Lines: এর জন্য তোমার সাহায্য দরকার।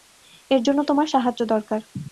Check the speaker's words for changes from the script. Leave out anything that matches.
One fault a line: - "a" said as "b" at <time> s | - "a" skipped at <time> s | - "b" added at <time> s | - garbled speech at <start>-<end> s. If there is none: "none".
none